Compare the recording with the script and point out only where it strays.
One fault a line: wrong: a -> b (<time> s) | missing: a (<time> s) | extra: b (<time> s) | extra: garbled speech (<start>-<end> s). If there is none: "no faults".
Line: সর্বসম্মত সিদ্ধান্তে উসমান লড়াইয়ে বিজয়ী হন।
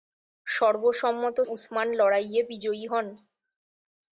missing: সিদ্ধান্তে (1.4 s)